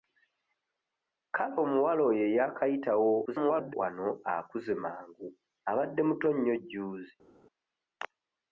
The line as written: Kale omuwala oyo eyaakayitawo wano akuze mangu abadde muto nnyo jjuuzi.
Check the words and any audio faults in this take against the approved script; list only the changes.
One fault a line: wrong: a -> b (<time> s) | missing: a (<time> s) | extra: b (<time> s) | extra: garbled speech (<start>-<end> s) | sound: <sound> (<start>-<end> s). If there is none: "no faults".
extra: garbled speech (3.3-3.7 s)